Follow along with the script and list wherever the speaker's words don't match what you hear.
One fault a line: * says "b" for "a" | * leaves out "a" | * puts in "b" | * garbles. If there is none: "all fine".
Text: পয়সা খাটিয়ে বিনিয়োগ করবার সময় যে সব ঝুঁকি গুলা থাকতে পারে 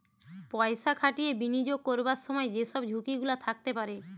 all fine